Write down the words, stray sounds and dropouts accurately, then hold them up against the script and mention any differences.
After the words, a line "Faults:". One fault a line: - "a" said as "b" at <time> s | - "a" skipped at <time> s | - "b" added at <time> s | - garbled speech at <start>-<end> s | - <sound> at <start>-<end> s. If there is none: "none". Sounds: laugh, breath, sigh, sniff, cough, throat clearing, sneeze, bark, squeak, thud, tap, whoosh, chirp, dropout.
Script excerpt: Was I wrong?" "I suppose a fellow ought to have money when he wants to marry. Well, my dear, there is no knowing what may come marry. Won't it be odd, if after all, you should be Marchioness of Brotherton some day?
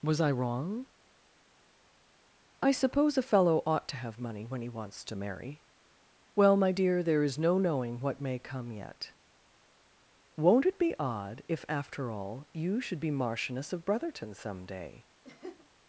Was I wrong?" "I suppose a fellow ought to have money when he wants to marry. Well, my dear, there is no knowing what may come yet. Won't it be odd, if after all, you should be Marchioness of Brotherton some day?
Faults:
- "marry" said as "yet" at 8.7 s
- laugh at 15.2-15.7 s